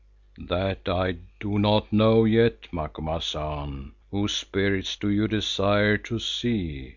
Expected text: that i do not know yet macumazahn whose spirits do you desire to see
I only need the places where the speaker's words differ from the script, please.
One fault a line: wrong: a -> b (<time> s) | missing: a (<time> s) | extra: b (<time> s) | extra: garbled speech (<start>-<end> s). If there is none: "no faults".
no faults